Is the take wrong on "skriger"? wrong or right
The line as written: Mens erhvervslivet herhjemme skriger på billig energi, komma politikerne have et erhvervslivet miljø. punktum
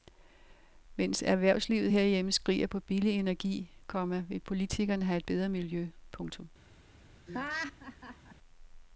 right